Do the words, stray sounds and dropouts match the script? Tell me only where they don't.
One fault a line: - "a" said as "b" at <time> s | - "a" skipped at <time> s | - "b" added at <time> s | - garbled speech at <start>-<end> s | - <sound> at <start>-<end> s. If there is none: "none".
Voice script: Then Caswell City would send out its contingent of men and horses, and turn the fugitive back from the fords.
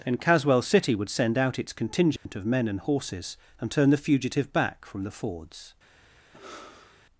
- dropout at 2.2-2.3 s
- sigh at 6.3-7.0 s